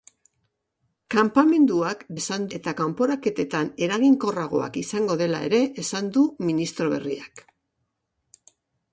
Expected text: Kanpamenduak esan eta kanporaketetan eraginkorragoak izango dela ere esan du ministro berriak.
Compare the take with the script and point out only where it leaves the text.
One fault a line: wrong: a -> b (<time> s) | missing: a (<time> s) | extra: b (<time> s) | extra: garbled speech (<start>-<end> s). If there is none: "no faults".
no faults